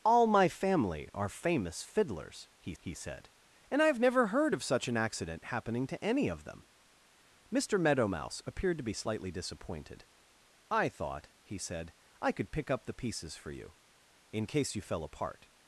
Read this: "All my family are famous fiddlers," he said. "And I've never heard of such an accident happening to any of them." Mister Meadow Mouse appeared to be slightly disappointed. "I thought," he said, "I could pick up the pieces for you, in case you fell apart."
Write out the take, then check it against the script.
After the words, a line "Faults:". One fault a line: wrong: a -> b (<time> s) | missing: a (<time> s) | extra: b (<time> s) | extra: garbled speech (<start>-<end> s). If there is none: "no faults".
"All my family are famous fiddlers," he he said. "And I've never heard of such an accident happening to any of them." Mister Meadow Mouse appeared to be slightly disappointed. "I thought," he said, "I could pick up the pieces for you, in case you fell apart."
Faults:
extra: he (2.8 s)